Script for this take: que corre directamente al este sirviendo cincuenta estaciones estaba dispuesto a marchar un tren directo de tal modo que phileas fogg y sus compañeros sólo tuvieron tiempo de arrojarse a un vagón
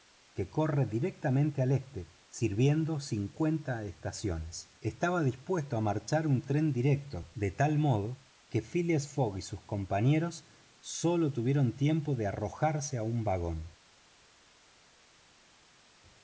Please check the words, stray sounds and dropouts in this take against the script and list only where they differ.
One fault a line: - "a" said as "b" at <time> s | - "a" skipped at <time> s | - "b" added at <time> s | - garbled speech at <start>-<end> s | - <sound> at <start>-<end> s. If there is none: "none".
none